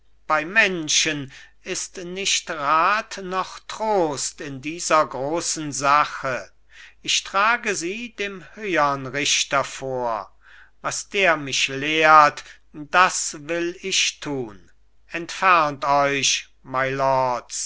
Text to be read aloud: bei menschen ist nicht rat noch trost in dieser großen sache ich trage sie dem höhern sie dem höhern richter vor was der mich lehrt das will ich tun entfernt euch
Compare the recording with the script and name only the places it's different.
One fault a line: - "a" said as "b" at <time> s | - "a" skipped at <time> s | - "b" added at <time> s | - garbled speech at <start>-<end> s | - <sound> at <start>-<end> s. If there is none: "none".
- "sie dem höhern" skipped at 9.1 s